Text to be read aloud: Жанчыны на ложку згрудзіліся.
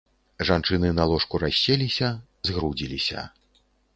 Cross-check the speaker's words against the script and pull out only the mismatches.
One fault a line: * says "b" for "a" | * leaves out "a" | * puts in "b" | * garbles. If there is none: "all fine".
* puts in "расселіся"